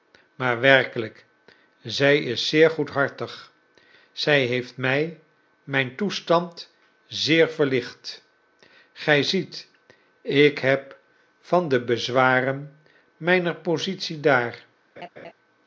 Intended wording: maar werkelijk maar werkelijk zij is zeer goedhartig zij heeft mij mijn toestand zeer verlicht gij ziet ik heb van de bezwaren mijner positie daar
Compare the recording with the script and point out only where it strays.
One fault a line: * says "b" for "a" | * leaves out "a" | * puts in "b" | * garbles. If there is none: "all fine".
* leaves out "maar werkelijk"